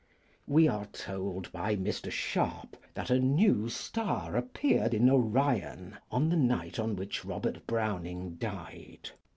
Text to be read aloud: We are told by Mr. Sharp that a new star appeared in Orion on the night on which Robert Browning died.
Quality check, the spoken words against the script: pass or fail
pass